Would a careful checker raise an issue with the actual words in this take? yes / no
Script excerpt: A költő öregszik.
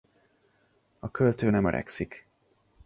yes